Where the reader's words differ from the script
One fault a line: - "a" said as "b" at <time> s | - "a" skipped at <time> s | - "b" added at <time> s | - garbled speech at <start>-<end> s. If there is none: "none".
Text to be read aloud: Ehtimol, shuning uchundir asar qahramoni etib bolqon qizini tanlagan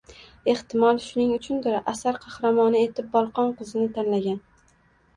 none